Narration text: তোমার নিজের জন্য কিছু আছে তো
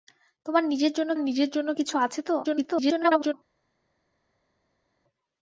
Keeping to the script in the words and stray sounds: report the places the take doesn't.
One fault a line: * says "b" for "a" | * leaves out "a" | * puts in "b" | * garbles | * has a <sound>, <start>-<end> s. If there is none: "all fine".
* puts in "নিজের জন্য"
* garbles